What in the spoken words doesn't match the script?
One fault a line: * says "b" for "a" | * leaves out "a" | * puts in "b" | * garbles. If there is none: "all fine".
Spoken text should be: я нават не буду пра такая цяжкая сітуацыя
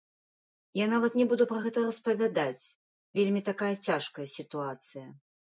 * puts in "гэта распавядаць вельмі"